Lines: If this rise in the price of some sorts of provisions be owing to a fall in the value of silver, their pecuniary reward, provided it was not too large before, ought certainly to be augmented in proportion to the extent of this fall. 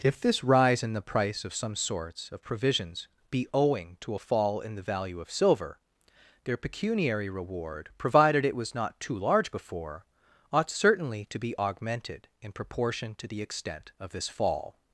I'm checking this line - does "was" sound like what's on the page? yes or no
yes